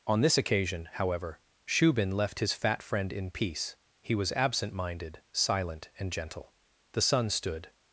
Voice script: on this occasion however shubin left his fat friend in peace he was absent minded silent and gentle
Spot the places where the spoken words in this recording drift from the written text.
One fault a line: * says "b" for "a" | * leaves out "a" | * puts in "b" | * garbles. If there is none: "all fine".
* puts in "the sun stood"